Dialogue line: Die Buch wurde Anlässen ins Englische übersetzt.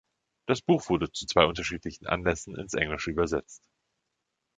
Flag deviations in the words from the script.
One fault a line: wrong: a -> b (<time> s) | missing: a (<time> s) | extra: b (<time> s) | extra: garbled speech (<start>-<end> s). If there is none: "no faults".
wrong: Die -> Das (0.5 s)
extra: zu zwei unterschiedlichen (1.1 s)